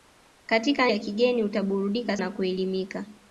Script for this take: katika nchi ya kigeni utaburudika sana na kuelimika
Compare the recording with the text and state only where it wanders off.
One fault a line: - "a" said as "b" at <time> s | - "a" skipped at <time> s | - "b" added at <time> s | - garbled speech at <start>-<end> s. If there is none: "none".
- "nchi" skipped at 0.9 s
- "sana" skipped at 2.2 s